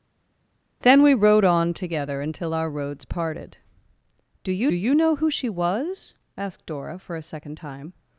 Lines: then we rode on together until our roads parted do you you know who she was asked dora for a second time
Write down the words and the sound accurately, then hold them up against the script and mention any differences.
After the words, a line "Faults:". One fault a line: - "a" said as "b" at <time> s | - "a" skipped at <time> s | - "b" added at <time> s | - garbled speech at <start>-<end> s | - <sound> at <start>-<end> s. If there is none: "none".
then we rode on together until our roads parted do you you know who she was asked dora for a second time
Faults:
none